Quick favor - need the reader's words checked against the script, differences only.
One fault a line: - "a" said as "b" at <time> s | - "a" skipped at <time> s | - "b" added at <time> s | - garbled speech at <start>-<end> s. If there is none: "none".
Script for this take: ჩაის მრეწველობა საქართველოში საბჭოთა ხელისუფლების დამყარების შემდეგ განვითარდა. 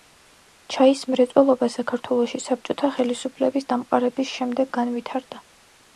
none